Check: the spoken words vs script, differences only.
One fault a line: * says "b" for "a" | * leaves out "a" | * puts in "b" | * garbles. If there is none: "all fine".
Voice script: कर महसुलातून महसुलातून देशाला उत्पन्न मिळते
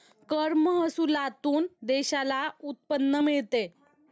* leaves out "महसुलातून"